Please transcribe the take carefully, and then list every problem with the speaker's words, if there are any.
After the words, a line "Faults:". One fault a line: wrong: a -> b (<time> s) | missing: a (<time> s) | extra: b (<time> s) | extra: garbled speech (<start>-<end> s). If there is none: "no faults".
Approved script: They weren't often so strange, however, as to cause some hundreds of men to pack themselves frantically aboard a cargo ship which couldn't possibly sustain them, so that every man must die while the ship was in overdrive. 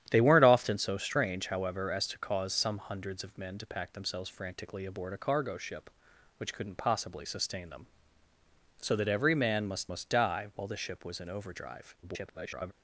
They weren't often so strange, however, as to cause some hundreds of men to pack themselves frantically aboard a cargo ship which couldn't possibly sustain them, so that every man must must die while the ship was in overdrive. [garbled]
Faults:
extra: must (9.9 s)
extra: garbled speech (12.0-12.7 s)